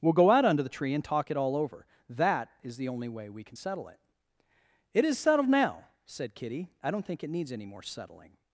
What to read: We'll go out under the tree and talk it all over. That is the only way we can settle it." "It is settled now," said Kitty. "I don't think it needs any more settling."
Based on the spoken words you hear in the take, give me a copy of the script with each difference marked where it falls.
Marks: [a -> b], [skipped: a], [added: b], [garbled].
We'll go out under the tree and talk it all over. That is the only way we can settle it." "It is settled now," said Kitty. "I don't think it needs any more settling."